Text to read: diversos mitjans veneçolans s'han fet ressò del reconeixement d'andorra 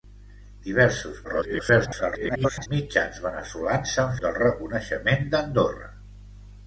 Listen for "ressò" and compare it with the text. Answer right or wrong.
wrong